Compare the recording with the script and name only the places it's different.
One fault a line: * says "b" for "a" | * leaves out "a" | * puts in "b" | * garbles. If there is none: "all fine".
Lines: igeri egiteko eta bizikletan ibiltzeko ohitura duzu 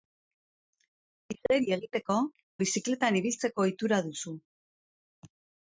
* leaves out "eta"